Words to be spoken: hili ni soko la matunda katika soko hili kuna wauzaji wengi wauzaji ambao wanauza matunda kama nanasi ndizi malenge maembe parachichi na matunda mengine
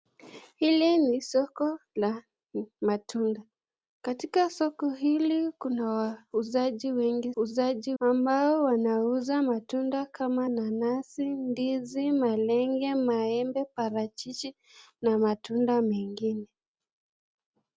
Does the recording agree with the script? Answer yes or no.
yes